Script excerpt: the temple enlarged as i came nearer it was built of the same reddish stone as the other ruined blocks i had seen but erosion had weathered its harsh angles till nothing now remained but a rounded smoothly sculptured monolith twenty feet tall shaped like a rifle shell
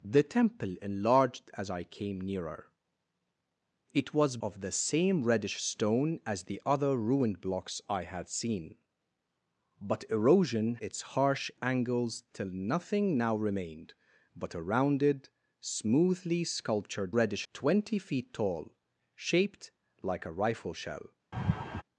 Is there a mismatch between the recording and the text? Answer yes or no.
yes